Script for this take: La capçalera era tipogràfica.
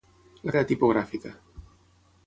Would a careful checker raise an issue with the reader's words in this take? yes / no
yes